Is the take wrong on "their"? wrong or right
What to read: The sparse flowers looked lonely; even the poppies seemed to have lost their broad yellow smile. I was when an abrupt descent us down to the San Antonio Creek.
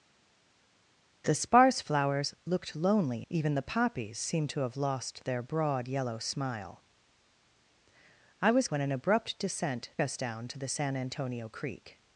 right